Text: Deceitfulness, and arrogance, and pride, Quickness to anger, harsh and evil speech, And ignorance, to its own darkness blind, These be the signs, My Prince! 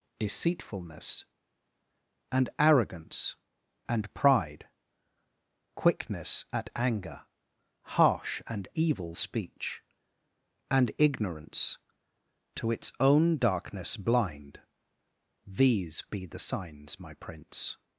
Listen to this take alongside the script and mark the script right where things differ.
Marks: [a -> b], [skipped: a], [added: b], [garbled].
Deceitfulness, and arrogance, and pride, Quickness [to -> at] anger, harsh and evil speech, And ignorance, to its own darkness blind, These be the signs, My Prince!